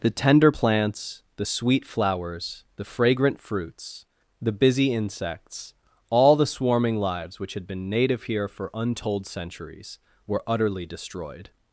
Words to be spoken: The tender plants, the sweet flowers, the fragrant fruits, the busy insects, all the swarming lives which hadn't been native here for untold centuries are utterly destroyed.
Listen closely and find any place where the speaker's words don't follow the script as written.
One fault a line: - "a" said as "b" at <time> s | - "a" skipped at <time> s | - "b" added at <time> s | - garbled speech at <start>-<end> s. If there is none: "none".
- "hadn't" said as "had" at 7.5 s
- "are" said as "were" at 10.3 s